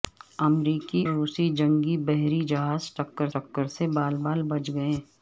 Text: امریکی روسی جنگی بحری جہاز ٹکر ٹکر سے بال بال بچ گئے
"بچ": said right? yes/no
yes